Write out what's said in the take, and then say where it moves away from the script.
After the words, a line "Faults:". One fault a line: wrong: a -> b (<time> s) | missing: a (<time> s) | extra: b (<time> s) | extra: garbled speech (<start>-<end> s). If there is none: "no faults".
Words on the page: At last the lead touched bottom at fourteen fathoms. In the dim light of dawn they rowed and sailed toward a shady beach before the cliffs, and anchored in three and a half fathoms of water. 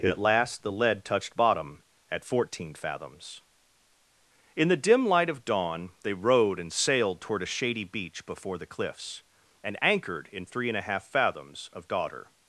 At last the lead touched bottom at fourteen fathoms. In the dim light of dawn they rowed and sailed toward a shady beach before the cliffs, and anchored in three and a half fathoms of daughter.
Faults:
wrong: water -> daughter (11.9 s)